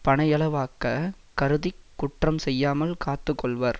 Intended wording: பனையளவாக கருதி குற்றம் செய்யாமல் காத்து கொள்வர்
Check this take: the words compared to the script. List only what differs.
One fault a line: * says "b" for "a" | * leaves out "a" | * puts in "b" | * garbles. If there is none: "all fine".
all fine